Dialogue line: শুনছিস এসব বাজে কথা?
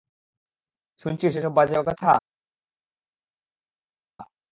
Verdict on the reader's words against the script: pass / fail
pass